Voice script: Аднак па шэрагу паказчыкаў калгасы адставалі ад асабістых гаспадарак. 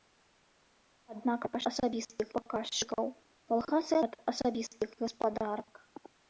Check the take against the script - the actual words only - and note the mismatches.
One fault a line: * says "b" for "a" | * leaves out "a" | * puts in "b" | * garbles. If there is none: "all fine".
* says "асабістых" for "шэрагу"
* leaves out "адставалі"